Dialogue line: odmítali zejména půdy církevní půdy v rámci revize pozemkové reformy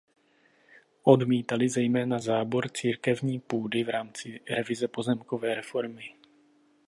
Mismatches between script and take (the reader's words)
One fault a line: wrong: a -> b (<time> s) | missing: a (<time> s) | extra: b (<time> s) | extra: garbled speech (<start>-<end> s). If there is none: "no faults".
wrong: půdy -> zábor (2.2 s)